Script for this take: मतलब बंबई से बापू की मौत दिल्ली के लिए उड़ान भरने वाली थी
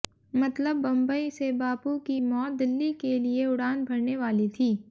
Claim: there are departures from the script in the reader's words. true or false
false